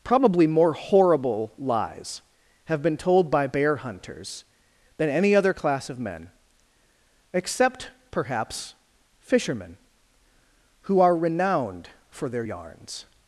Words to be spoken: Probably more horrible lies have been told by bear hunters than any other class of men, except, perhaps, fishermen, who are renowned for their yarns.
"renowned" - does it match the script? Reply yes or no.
yes